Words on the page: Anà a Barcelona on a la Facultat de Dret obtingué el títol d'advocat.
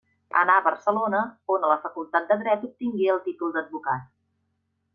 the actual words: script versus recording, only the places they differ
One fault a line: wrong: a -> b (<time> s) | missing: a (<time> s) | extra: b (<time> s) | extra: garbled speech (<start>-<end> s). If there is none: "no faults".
no faults